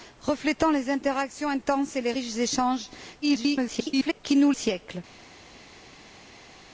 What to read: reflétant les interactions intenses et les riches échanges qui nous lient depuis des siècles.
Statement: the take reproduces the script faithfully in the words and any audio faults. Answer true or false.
false